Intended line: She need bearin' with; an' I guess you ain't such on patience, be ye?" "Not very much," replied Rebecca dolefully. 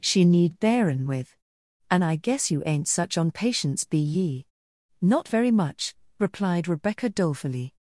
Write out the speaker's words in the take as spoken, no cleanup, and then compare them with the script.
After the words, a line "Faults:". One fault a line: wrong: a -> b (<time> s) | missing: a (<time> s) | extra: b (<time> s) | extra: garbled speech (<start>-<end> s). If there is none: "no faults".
She need bearin' with; an' I guess you ain't such on patience, be ye?" "Not very much," replied Rebecca dolefully.
Faults:
no faults